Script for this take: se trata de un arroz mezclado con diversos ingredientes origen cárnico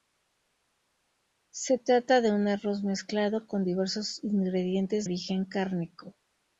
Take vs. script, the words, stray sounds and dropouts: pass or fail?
pass